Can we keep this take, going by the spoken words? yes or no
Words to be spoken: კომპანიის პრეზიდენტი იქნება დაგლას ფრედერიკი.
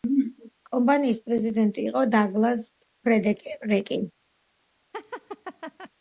no